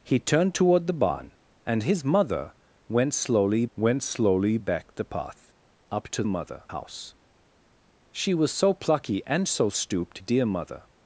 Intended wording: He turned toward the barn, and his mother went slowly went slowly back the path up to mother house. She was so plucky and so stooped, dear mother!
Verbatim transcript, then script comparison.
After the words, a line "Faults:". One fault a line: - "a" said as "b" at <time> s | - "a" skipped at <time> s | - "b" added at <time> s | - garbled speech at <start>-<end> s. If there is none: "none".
He turned toward the barn, and his mother went slowly went slowly back the path up to mother house. She was so plucky and so stooped, dear mother!
Faults:
none